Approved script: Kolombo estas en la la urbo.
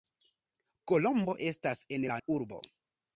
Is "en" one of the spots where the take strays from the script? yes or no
no